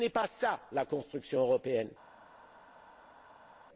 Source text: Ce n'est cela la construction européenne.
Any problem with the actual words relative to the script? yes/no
yes